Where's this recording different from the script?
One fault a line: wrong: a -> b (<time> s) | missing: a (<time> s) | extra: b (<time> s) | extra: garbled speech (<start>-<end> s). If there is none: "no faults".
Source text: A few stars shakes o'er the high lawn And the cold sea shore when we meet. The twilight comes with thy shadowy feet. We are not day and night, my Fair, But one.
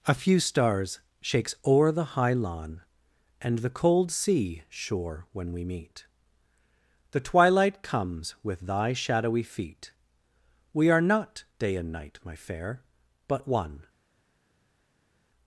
no faults